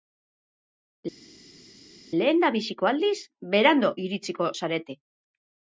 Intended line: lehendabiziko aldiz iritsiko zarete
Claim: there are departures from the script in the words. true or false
true